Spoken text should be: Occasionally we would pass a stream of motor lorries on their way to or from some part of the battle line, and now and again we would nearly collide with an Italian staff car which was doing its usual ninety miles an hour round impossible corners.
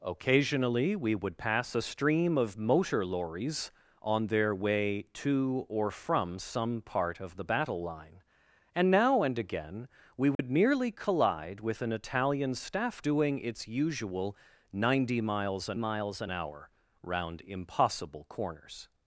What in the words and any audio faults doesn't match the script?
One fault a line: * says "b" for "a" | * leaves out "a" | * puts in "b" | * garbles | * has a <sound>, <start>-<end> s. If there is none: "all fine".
* has a dropout, 10.3-10.4 s
* leaves out "car which was"
* puts in "miles an"